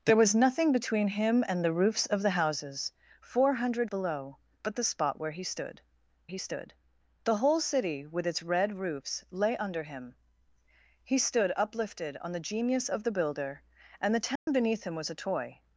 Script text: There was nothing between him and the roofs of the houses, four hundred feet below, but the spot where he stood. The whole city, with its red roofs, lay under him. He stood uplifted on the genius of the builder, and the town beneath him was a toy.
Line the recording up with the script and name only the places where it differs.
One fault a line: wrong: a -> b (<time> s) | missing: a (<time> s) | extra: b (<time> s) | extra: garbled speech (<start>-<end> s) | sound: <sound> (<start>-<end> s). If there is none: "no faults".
missing: feet (3.9 s)
extra: he stood (6.3 s)
sound: dropout (14.4-14.5 s)